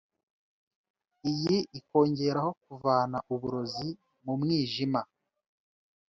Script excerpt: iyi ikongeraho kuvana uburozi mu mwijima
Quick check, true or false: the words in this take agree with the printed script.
true